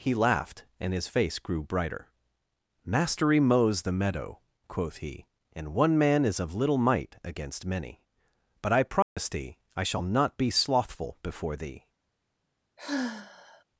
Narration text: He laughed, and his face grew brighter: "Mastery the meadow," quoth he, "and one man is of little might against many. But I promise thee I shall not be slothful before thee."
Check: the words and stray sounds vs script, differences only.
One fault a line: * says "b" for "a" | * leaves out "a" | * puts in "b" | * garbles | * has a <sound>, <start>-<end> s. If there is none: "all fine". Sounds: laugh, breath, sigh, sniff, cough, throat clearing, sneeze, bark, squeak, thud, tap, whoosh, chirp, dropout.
* puts in "mows"
* has a dropout, 9.0-9.2 s
* has a sigh, 12.8-13.6 s